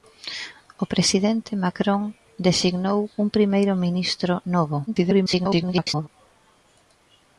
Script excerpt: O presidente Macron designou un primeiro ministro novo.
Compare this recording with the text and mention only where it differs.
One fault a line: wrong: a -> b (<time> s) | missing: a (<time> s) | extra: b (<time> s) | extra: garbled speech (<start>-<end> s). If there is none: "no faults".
extra: garbled speech (4.9-6.1 s)